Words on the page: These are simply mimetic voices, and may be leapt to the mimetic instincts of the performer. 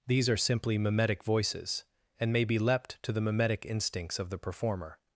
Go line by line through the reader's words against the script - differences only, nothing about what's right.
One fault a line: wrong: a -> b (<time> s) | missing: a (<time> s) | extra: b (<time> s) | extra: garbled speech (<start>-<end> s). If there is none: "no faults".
no faults